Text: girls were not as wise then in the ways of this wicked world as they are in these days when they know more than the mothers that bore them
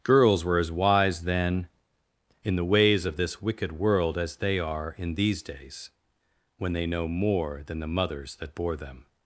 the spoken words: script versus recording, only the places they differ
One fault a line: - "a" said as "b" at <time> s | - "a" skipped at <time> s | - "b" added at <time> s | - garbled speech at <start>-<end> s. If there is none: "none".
- "not" skipped at 0.6 s